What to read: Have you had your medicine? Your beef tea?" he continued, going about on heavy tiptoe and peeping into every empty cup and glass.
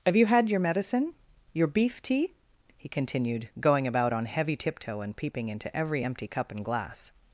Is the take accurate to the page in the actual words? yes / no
yes